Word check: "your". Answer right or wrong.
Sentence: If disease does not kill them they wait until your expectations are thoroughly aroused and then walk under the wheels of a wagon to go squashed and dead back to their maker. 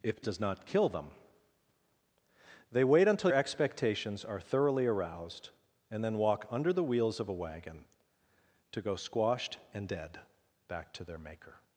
wrong